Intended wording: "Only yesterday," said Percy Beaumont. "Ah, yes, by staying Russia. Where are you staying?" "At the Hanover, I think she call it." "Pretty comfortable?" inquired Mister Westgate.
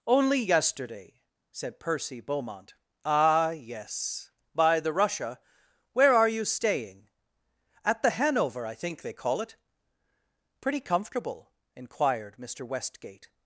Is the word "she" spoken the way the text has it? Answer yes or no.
no